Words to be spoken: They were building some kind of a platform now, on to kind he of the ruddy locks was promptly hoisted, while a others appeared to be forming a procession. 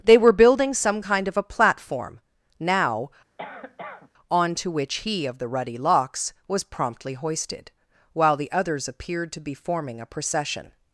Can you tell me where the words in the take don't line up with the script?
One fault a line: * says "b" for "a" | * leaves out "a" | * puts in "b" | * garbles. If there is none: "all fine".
* says "which" for "kind"
* says "the" for "a"